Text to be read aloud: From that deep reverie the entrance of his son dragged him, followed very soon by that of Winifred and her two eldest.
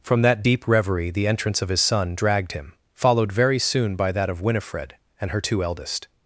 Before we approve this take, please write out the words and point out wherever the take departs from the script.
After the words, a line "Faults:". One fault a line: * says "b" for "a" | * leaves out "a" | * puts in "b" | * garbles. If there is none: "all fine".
From that deep reverie the entrance of his son dragged him, followed very soon by that of Winifred and her two eldest.
Faults:
all fine